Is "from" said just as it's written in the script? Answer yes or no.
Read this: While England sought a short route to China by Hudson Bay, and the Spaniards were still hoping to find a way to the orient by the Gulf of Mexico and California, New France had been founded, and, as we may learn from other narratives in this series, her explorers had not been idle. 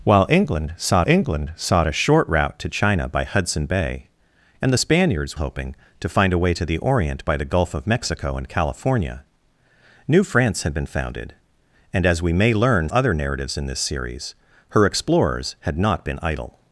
no